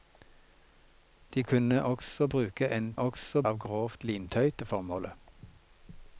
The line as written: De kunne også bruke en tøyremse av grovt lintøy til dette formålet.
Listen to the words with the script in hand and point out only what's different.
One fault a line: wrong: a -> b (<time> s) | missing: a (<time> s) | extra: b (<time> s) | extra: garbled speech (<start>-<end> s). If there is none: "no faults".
wrong: tøyremse -> også (3.0 s)
missing: til (4.5 s)